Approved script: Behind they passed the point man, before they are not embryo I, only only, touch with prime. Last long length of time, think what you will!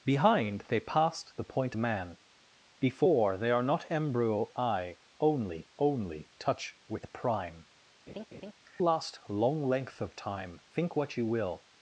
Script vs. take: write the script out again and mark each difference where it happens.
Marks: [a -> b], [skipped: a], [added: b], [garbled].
Behind they passed the point man, before they are not embryo I, only only, touch with prime. Last long length of time, think what you will!